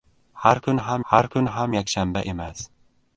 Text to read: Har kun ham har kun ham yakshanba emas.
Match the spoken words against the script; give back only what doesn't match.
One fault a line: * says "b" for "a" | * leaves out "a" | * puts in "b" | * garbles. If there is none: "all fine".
all fine